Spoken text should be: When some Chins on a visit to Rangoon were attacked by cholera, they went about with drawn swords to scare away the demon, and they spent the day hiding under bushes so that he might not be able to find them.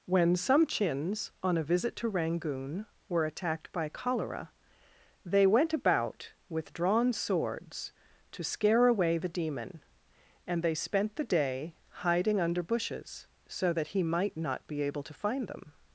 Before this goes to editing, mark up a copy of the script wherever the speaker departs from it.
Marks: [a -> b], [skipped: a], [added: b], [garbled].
When some Chins on a visit to Rangoon were attacked by cholera, they went about with drawn swords to scare away the demon, and they spent the day hiding under bushes so that he might not be able to find them.